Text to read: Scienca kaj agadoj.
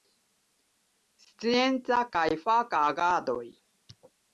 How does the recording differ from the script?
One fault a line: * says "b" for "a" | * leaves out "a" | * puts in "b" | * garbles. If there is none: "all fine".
* puts in "faka"